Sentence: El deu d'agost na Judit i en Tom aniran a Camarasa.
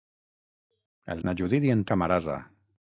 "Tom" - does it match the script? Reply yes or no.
no